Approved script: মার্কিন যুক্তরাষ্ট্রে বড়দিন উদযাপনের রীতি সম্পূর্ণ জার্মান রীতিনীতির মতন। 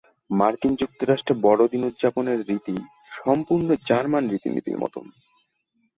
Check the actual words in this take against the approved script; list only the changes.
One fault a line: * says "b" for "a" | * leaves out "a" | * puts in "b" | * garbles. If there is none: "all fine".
all fine